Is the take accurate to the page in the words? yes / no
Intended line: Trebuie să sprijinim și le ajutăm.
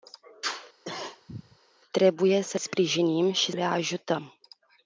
yes